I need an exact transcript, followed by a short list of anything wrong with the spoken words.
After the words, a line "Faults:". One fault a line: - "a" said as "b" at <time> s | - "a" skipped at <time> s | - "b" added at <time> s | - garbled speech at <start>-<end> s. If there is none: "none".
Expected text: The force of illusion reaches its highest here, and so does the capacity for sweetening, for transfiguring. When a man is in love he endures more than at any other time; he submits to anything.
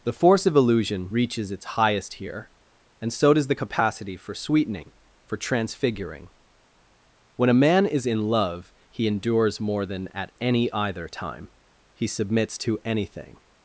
The force of illusion reaches its highest here, and so does the capacity for sweetening, for transfiguring. When a man is in love he endures more than at any either time; he submits to anything.
Faults:
- "other" said as "either" at 10.7 s